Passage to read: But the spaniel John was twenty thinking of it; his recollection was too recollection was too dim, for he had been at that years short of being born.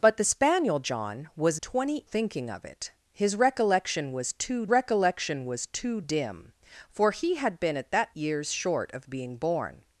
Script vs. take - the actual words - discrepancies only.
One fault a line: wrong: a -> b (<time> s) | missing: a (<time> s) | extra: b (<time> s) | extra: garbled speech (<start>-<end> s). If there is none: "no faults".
no faults